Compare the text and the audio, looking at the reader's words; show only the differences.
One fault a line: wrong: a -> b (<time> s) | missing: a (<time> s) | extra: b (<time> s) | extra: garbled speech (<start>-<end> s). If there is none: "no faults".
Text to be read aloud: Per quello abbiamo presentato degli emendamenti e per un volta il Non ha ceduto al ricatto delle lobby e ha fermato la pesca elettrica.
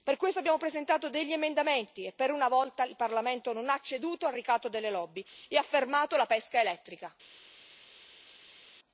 wrong: quello -> questo (0.2 s)
wrong: un -> una (2.3 s)
extra: Parlamento (3.0 s)